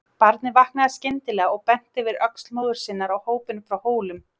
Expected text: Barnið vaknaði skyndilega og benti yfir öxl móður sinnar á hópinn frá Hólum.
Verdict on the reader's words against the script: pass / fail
pass